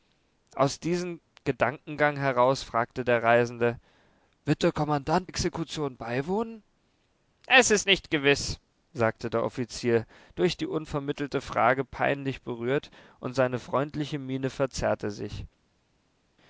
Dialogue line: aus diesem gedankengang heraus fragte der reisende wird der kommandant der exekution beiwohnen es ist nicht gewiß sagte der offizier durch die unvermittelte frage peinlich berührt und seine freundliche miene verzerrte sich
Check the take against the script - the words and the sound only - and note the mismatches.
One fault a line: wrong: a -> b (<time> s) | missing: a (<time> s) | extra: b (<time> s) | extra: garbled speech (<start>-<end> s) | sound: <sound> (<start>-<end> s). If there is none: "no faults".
missing: der (5.3 s)